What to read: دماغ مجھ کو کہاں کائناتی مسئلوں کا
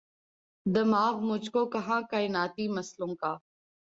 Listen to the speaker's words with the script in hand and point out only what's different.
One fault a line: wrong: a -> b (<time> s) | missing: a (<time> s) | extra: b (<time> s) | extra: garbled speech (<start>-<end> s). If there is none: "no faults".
no faults